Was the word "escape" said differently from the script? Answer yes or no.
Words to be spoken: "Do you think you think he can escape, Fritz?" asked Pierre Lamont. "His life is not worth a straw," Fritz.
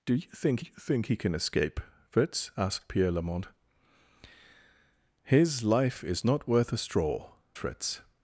no